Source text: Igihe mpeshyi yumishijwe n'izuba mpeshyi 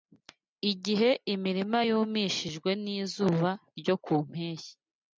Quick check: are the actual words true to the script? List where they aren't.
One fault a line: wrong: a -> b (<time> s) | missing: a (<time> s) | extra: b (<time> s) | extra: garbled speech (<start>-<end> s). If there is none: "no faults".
wrong: mpeshyi -> imirima (1.3 s)
extra: ryo ku (3.8 s)